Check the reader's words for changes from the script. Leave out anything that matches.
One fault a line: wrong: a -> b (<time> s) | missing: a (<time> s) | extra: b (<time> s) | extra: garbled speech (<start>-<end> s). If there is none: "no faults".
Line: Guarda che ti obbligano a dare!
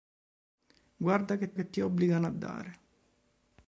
extra: che (1.5 s)